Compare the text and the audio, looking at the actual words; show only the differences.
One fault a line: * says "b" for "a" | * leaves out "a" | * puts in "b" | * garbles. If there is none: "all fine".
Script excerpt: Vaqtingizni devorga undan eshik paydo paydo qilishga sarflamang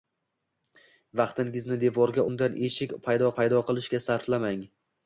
all fine